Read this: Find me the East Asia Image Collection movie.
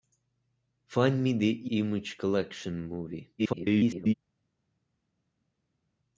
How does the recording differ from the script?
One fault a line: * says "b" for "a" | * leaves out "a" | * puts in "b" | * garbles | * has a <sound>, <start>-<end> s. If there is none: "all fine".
* leaves out "East Asia"
* garbles